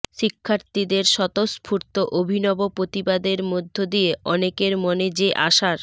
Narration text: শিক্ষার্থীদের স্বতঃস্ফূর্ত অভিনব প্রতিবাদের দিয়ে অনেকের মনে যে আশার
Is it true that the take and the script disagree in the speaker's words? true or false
true